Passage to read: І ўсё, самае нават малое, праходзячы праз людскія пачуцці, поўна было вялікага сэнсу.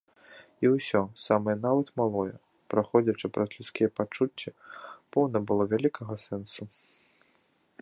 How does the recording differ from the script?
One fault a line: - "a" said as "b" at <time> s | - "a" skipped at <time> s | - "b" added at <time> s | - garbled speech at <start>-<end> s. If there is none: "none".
none